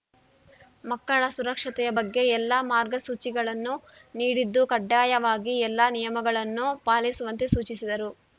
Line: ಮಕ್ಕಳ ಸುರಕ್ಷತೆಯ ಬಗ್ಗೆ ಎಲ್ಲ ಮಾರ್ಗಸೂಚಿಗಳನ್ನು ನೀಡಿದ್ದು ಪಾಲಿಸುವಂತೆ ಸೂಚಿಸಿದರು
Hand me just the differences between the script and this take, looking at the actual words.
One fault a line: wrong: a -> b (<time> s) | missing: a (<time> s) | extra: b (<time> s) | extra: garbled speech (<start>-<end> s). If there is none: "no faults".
extra: ಕಡ್ಡಾಯವಾಗಿ ಎಲ್ಲ ನಿಯಮಗಳನ್ನು (4.7 s)